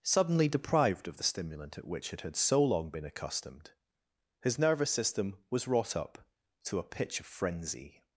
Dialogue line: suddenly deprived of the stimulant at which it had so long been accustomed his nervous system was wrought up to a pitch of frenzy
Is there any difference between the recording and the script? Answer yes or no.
no